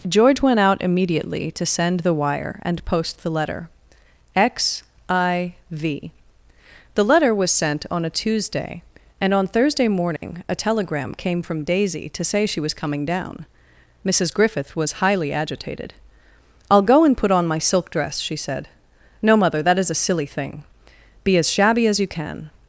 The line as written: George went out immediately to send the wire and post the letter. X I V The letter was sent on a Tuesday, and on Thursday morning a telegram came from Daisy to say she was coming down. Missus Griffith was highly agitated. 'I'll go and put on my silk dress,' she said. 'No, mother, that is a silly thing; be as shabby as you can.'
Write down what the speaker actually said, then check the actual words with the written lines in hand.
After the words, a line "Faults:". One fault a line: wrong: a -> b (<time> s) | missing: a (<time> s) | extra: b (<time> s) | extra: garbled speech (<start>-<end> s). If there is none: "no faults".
George went out immediately to send the wire and post the letter. X I V The letter was sent on a Tuesday, and on Thursday morning a telegram came from Daisy to say she was coming down. Missus Griffith was highly agitated. 'I'll go and put on my silk dress,' she said. 'No, mother, that is a silly thing; be as shabby as you can.'
Faults:
no faults